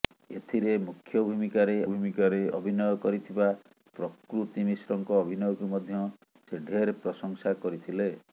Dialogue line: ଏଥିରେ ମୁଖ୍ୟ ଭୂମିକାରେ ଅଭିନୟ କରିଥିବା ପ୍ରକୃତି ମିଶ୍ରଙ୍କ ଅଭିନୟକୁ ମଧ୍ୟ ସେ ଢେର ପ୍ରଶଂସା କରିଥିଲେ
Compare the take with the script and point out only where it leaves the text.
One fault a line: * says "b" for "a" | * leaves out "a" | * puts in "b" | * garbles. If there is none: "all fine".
* puts in "ଭୂମିକାରେ"